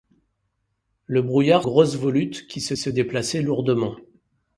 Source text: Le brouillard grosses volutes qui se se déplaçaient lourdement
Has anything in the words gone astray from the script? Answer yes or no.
no